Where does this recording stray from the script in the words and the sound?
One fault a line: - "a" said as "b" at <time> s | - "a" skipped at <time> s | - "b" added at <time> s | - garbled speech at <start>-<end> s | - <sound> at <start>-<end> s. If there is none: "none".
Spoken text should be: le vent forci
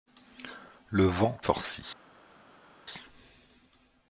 none